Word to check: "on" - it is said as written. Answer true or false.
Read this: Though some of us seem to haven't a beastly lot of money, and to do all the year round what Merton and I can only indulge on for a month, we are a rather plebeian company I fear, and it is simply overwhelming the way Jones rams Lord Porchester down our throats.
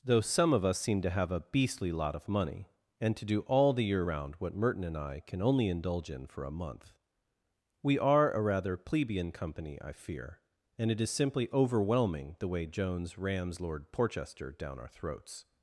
false